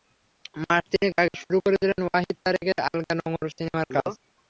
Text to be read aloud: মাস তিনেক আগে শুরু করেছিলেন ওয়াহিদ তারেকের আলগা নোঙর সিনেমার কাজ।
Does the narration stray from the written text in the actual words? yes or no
no